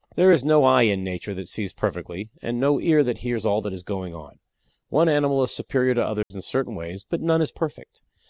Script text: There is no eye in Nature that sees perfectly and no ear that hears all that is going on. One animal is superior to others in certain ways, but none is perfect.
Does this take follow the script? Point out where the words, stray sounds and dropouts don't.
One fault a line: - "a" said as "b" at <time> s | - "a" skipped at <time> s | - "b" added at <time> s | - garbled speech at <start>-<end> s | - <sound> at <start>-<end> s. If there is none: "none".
- dropout at 6.2-6.3 s